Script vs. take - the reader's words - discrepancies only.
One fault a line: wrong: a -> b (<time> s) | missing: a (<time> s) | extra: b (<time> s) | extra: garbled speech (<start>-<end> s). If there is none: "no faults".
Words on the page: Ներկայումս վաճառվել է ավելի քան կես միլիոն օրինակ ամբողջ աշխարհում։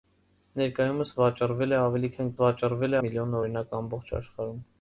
wrong: կես -> վաճառվել (2.4 s)